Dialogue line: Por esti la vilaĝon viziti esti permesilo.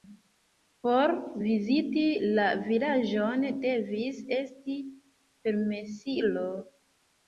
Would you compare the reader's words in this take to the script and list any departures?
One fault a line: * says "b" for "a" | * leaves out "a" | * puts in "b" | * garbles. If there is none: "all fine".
* says "viziti" for "esti"
* says "devis" for "viziti"